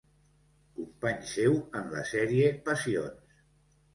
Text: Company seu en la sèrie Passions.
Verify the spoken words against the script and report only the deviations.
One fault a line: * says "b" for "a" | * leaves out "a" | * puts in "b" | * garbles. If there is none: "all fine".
all fine